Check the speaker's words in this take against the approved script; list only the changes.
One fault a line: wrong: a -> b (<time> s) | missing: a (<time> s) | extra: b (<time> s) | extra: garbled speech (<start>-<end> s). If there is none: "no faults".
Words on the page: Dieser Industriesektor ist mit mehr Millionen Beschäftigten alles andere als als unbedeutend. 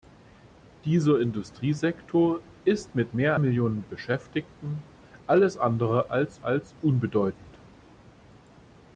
no faults